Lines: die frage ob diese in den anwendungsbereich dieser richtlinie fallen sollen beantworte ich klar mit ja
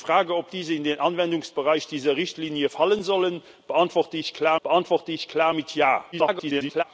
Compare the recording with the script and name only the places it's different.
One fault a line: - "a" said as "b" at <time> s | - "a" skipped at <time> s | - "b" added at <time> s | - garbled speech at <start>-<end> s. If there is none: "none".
- "beantworte ich klar" added at 4.6 s
- garbled speech at 6.1-6.8 s